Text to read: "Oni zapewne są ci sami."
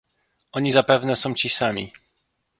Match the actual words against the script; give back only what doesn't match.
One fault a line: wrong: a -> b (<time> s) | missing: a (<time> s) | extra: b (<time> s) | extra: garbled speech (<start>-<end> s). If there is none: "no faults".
no faults